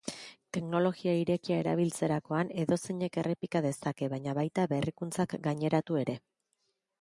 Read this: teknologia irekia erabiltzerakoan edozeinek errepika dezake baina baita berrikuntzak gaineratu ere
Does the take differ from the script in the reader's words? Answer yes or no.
no